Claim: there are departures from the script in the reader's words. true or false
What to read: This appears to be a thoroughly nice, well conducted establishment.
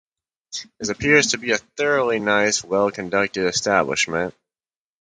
false